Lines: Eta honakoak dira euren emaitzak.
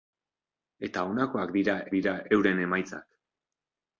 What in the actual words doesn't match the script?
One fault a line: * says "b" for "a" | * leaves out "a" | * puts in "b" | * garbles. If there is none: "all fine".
* puts in "dira"